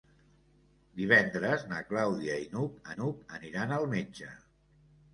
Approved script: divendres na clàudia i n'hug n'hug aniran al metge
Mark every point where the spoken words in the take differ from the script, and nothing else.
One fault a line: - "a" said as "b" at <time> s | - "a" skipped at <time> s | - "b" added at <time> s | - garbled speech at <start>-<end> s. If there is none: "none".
none